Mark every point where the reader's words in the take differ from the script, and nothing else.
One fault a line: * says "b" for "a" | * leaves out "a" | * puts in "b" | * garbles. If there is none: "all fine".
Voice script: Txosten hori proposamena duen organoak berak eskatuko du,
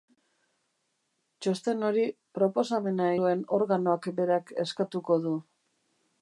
all fine